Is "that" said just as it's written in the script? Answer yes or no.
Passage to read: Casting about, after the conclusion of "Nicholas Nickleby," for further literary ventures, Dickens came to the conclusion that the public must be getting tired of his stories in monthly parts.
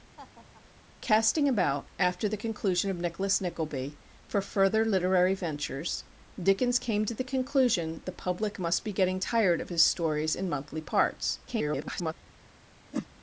no